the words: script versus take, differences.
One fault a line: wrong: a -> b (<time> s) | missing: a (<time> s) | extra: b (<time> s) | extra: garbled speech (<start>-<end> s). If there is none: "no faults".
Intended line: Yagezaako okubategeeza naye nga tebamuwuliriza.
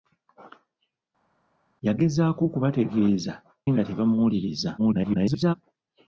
missing: naye (3.3 s)
extra: garbled speech (4.8-5.5 s)